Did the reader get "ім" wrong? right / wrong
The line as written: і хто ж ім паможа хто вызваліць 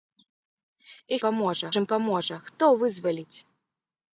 right